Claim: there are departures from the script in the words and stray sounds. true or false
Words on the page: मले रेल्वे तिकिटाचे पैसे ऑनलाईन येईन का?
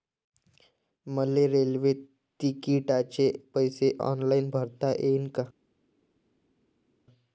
true